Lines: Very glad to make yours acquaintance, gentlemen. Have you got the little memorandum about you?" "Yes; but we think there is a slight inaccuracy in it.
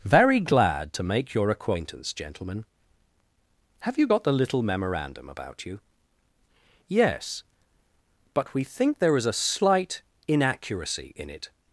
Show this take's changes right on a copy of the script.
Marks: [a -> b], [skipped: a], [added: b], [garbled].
Very glad to make [yours -> your] acquaintance, gentlemen. Have you got the little memorandum about you?" "Yes; but we think there is a slight inaccuracy in it.